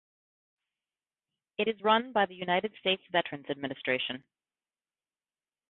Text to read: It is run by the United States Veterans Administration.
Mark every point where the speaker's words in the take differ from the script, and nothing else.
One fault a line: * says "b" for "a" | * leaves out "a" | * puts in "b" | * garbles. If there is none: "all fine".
all fine